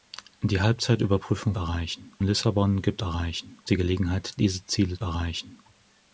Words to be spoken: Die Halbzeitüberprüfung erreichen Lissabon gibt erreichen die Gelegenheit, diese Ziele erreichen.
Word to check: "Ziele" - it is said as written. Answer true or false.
true